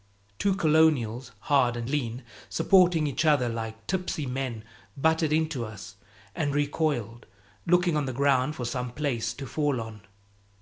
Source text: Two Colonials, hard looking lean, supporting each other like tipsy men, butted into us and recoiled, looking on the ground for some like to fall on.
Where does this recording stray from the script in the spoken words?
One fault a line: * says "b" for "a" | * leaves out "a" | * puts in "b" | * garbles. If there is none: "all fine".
* says "and" for "looking"
* says "place" for "like"